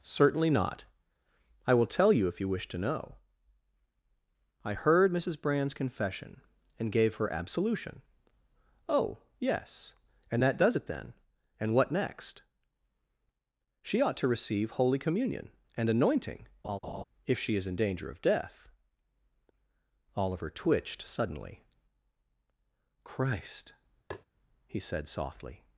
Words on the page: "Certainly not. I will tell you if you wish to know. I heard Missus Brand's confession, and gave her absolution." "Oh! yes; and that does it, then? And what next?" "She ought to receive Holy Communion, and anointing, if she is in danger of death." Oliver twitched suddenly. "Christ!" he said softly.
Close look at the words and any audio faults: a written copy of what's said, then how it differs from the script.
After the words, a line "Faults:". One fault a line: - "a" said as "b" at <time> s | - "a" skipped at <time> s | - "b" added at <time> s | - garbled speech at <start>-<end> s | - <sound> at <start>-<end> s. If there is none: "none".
"Certainly not. I will tell you if you wish to know. I heard Missus Brand's confession, and gave her absolution." "Oh! yes; and that does it, then? And what next?" "She ought to receive Holy Communion, and anointing, if she is in danger of death." Oliver twitched suddenly. "Christ!" he said softly.
Faults:
- laugh at 16.6-17.0 s
- tap at 24.1-24.3 s